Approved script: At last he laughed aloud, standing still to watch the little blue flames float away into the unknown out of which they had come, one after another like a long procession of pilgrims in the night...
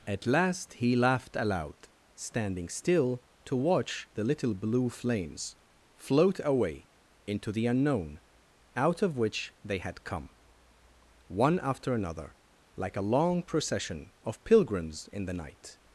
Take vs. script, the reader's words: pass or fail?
pass